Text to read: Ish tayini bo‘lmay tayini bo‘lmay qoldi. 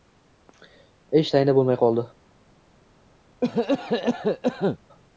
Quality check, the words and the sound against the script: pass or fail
fail